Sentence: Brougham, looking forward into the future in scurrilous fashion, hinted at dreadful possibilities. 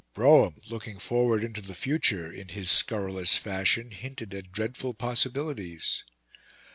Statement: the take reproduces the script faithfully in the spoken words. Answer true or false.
false